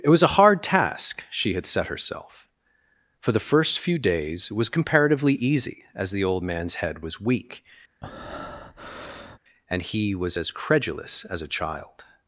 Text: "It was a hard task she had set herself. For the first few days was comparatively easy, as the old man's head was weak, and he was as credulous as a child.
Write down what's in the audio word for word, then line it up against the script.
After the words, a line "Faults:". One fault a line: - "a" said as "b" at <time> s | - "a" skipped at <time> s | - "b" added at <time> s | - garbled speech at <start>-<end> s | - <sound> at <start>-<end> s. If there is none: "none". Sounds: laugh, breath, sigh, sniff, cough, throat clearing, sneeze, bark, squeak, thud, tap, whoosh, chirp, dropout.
"It was a hard task she had set herself. For the first few days was comparatively easy, as the old man's head was weak, and he was as credulous as a child.
Faults:
- breath at 8.0-9.4 s